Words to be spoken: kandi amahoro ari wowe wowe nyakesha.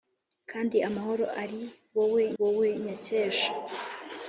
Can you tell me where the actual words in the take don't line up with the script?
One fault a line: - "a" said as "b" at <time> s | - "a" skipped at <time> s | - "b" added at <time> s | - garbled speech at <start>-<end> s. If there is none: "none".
none